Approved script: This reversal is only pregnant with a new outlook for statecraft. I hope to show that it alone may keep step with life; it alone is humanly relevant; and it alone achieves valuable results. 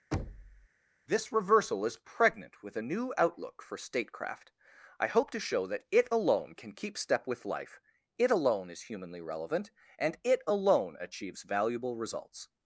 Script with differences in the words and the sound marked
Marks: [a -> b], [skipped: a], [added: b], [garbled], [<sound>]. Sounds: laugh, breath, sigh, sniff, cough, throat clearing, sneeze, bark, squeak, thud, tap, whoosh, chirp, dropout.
[thud] This reversal is [skipped: only] pregnant with a new outlook for statecraft. I hope to show that it alone [may -> can] keep step with life; it alone is humanly relevant; and it alone achieves valuable results.